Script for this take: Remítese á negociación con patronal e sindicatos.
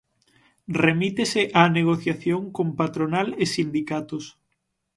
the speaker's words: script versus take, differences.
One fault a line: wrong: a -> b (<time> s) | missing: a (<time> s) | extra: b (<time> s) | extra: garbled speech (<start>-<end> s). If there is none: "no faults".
no faults